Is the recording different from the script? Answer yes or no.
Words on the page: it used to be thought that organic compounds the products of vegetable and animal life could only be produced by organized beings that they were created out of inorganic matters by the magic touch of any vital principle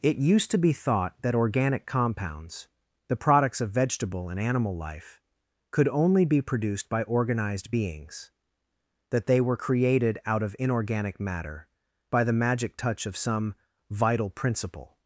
yes